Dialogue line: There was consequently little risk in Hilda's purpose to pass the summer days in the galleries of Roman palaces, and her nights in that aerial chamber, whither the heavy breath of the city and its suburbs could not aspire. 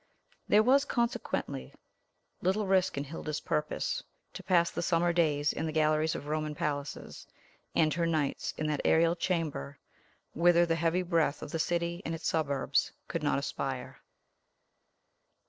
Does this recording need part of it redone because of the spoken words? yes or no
no